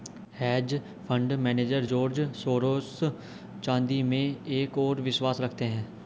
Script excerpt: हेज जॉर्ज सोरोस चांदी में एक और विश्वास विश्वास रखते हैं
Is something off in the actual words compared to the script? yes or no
yes